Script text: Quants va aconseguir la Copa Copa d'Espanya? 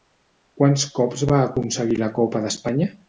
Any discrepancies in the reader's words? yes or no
yes